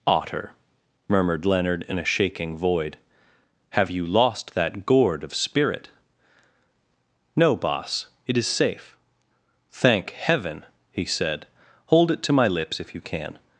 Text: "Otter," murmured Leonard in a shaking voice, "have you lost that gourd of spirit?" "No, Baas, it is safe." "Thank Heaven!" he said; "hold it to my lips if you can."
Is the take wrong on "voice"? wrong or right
wrong